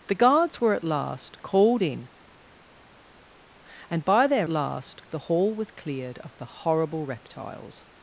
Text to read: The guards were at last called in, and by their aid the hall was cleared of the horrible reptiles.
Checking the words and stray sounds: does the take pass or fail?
fail